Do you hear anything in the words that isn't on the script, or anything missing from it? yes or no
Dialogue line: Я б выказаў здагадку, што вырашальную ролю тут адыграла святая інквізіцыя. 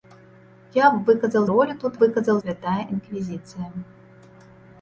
yes